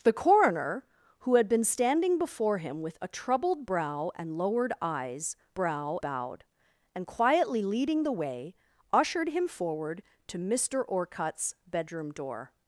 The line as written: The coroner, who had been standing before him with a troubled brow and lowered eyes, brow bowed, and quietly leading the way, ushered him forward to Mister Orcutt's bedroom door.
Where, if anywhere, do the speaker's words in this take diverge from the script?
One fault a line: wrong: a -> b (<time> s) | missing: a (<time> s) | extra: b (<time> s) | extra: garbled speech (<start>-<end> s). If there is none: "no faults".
no faults